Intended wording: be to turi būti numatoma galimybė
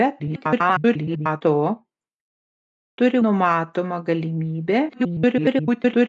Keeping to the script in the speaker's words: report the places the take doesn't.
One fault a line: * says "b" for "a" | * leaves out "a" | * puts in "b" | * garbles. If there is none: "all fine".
* garbles
* leaves out "būti"
* garbles